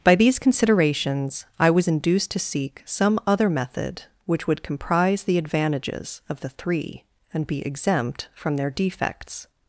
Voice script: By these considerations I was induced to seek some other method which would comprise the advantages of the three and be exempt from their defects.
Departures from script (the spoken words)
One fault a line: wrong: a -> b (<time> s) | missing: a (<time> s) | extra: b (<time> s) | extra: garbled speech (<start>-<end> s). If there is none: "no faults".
no faults